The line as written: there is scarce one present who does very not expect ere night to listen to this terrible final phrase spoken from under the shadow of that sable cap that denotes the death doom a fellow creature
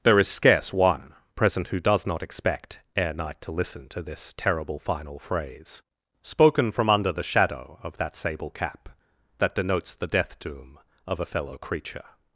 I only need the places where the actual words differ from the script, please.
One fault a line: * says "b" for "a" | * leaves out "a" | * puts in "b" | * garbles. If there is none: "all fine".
* leaves out "very"
* puts in "of"